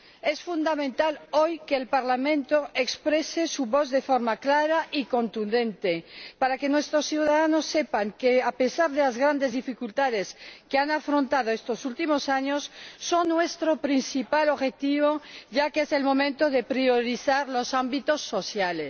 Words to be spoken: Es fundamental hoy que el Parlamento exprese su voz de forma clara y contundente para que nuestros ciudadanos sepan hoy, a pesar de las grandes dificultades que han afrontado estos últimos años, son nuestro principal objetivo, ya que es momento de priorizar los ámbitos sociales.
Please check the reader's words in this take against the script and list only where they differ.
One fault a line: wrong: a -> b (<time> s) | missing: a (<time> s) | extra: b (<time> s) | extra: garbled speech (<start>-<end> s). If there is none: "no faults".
wrong: hoy -> que (8.1 s)
extra: el (15.9 s)